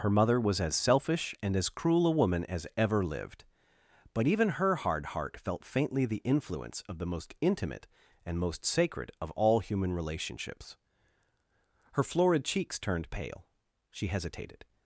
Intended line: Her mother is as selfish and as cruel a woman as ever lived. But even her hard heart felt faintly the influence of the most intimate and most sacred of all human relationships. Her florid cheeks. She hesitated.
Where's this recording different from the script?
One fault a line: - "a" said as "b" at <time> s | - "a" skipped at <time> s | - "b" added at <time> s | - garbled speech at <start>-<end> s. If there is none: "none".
- "is" said as "was" at 0.4 s
- "turned pale" added at 12.8 s